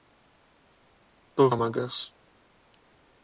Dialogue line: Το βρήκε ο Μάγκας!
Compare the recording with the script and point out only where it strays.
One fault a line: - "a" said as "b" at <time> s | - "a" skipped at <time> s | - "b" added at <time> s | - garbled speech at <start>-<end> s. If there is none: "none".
- "βρήκε" skipped at 1.5 s